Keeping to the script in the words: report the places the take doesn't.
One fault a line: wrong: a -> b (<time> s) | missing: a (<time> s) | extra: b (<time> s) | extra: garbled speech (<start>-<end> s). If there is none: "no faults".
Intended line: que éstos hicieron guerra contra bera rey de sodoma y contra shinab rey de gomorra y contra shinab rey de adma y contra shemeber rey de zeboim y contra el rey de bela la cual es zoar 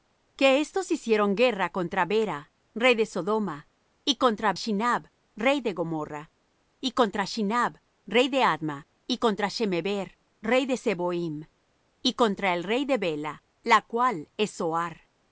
no faults